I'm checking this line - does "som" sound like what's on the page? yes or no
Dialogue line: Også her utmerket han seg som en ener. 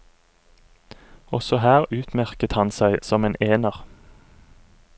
yes